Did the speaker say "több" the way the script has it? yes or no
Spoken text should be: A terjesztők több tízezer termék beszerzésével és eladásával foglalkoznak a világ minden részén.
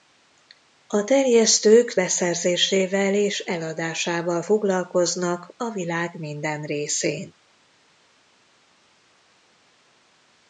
no